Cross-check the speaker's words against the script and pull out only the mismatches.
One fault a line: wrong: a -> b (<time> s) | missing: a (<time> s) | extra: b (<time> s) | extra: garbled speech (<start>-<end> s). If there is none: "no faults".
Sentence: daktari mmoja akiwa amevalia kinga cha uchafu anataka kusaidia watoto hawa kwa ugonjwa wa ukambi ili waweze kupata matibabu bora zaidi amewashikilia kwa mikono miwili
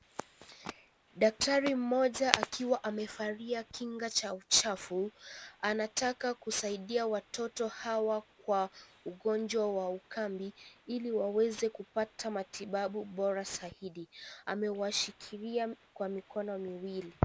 no faults